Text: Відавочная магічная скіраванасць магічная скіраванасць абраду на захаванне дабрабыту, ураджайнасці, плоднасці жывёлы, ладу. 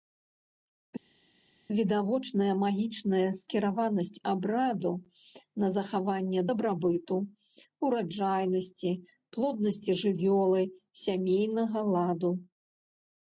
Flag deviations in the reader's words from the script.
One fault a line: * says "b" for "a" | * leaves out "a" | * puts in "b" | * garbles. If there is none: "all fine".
* leaves out "магічная скіраванасць"
* puts in "сямейнага"